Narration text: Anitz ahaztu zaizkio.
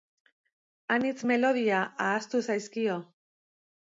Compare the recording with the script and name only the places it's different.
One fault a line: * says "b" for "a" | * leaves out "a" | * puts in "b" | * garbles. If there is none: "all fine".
* puts in "melodia"